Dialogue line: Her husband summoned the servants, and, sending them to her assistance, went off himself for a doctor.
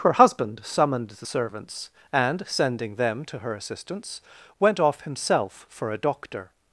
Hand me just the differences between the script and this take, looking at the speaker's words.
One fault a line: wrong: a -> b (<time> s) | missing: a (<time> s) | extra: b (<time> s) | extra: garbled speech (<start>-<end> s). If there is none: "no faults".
no faults